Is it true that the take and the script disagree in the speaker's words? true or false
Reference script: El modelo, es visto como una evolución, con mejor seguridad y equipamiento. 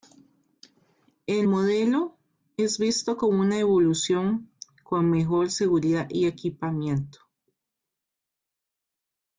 false